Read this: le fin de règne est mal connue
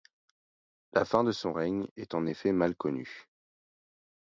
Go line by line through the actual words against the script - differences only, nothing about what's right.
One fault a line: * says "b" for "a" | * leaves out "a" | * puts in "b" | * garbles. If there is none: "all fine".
* says "la" for "le"
* puts in "son"
* puts in "en effet"